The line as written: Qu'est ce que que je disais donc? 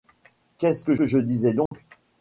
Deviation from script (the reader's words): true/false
false